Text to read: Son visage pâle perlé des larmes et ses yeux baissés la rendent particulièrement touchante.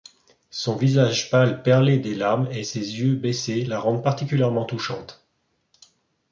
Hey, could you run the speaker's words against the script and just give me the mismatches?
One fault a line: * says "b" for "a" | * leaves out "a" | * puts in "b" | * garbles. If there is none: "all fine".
all fine